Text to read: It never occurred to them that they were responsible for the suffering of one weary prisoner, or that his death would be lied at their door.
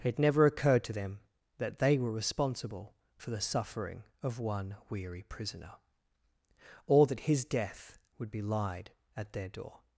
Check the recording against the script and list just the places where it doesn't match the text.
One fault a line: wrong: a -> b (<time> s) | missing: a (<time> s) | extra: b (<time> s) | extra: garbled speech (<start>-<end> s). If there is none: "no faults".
no faults